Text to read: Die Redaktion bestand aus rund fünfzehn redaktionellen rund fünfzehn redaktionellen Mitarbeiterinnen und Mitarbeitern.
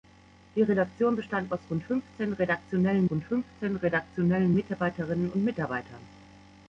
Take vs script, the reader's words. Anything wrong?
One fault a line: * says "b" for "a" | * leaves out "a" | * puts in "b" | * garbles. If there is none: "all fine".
all fine